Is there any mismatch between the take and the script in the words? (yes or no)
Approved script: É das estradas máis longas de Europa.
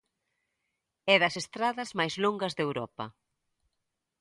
no